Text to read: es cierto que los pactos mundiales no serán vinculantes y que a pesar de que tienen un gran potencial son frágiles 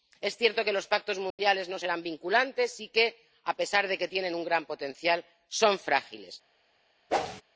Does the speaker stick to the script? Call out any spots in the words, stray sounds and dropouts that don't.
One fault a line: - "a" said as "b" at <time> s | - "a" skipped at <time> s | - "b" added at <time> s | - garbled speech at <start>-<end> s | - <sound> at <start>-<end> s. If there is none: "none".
- dropout at 1.3-1.4 s
- whoosh at 7.1-7.4 s